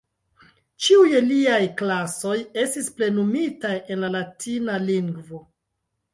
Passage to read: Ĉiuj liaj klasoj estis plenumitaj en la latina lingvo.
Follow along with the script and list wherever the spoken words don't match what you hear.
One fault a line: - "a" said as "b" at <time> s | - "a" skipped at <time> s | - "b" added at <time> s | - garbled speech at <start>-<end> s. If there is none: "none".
none